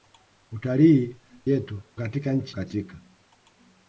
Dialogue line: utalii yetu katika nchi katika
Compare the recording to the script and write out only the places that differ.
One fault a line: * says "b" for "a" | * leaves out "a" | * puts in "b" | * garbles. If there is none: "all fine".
all fine